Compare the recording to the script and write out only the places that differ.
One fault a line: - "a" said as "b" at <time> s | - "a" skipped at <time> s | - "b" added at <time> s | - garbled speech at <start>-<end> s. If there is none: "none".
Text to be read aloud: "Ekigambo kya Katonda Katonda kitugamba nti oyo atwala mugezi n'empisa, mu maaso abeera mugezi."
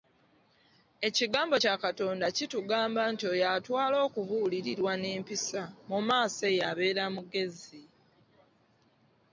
- "Katonda" skipped at 2.2 s
- "mugezi" said as "okubuulirirwa" at 4.1 s
- "eyo" added at 6.5 s